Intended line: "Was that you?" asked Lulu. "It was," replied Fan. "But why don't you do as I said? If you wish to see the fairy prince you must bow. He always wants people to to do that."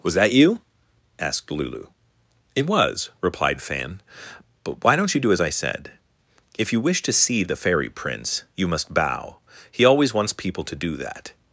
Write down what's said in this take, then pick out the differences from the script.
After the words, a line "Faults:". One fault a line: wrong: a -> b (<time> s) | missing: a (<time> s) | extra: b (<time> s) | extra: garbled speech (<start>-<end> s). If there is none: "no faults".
"Was that you?" asked Lulu. "It was," replied Fan. "But why don't you do as I said? If you wish to see the fairy prince you must bow. He always wants people to do that."
Faults:
missing: to (10.8 s)